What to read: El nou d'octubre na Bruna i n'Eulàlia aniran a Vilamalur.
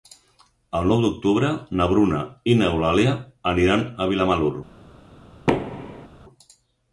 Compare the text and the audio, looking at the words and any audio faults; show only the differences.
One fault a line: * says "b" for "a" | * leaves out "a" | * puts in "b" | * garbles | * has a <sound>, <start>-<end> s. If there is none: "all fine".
* has a thud, 5.5-6.1 s